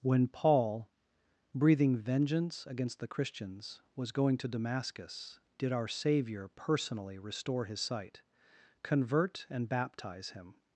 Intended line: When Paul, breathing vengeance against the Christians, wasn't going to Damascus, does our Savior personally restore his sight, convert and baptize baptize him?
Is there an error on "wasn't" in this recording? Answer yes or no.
yes